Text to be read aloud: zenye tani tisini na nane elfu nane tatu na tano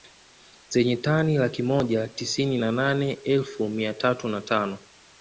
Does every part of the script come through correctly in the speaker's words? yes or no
no